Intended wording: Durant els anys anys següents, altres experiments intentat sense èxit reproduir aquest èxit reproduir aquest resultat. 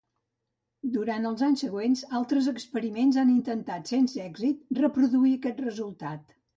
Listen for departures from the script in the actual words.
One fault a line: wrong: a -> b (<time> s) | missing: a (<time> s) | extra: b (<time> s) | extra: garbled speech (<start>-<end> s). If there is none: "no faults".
missing: anys (1.6 s)
extra: han (3.2 s)
missing: èxit reproduir aquest (5.7 s)